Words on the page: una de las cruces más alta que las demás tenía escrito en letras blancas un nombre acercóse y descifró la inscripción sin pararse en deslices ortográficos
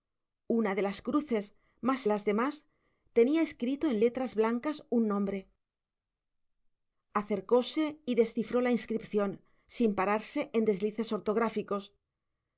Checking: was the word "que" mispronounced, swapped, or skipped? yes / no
yes